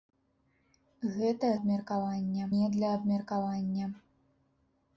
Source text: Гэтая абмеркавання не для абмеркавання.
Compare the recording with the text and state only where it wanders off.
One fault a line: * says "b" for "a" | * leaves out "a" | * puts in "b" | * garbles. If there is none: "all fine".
all fine